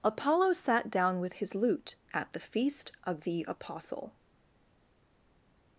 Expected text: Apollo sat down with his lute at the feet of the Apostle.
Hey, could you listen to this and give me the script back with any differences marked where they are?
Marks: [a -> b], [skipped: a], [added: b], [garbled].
Apollo sat down with his lute at the [feet -> feast] of the Apostle.